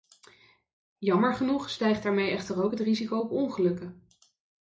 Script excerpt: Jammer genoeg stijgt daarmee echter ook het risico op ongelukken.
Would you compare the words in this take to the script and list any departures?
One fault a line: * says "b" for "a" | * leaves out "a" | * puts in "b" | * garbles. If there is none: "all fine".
all fine